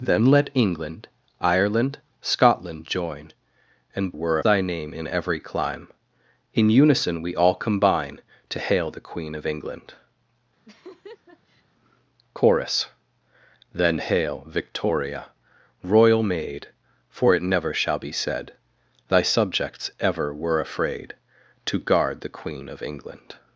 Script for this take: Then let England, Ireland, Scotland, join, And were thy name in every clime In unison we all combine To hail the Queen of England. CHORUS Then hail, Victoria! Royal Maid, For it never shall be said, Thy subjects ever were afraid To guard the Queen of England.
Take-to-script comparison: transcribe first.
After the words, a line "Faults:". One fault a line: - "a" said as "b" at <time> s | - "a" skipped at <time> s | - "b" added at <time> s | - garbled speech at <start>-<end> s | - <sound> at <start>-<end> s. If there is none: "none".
Then let England, Ireland, Scotland, join, And were thy name in every clime In unison we all combine To hail the Queen of England. CHORUS Then hail, Victoria! Royal Maid, For it never shall be said, Thy subjects ever were afraid To guard the Queen of England.
Faults:
- laugh at 10.6-11.6 s